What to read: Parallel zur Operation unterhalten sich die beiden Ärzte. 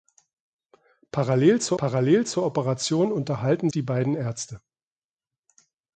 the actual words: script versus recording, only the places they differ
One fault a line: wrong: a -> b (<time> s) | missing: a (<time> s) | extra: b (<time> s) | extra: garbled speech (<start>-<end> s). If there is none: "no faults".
extra: parallel zur (1.8 s)
missing: sich (3.7 s)